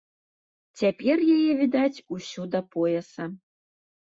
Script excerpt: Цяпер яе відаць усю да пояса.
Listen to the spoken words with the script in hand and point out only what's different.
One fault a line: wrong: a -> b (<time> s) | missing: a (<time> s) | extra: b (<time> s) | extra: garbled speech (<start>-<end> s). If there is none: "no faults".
no faults